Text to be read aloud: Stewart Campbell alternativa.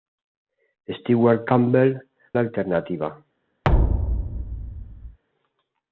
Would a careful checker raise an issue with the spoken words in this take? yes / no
no